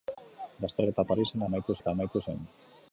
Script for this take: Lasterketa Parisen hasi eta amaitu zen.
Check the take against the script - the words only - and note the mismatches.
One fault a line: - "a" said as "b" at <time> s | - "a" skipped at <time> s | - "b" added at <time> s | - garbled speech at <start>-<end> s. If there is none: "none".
- "hasi" said as "amaitu" at 1.5 s